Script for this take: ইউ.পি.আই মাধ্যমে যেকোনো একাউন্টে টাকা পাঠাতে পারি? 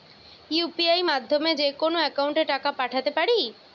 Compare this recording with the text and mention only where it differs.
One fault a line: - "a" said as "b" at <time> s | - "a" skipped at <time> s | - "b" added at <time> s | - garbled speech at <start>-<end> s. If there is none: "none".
none